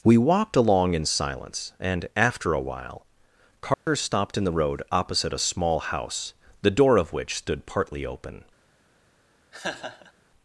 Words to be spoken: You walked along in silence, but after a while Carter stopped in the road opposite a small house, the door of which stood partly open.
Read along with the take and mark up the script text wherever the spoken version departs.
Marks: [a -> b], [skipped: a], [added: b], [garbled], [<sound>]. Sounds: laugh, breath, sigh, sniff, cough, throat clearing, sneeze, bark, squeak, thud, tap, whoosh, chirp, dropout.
[You -> We] walked along in silence, [but -> and] after a while Carter [dropout] stopped in the road opposite a small house, the door of which stood partly open. [laugh]